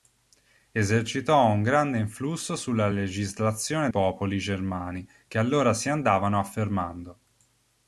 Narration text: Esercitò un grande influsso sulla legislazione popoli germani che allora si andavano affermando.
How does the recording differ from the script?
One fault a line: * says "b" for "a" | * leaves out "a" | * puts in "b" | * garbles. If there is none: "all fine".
all fine